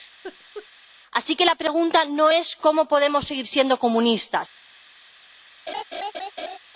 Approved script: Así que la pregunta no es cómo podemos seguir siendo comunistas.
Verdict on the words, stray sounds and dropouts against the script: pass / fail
fail